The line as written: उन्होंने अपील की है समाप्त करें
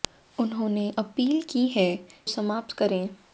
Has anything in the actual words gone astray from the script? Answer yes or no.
no